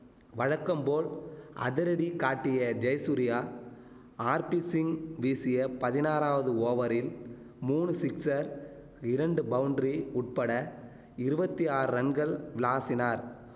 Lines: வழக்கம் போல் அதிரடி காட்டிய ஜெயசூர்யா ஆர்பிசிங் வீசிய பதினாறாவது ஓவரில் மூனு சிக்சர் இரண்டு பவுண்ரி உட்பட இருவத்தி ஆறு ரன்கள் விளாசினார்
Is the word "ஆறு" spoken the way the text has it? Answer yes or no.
yes